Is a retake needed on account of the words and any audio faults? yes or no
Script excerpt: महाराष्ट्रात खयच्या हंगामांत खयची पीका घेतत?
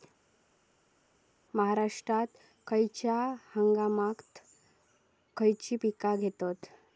no